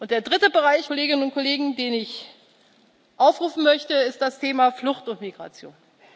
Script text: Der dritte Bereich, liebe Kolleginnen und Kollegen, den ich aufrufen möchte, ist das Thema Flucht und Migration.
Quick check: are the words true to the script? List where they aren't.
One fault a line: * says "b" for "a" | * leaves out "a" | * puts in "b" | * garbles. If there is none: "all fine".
* leaves out "liebe"